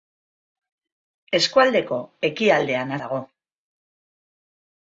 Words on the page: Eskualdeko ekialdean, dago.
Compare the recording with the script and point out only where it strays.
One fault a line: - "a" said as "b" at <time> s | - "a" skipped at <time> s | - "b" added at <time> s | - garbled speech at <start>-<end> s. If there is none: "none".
none